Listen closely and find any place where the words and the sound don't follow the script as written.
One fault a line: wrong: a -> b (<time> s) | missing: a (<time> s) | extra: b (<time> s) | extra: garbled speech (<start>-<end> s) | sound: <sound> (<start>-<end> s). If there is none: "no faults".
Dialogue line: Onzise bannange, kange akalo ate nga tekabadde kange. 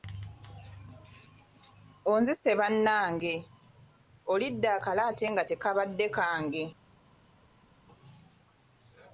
wrong: kange -> olidde (4.3 s)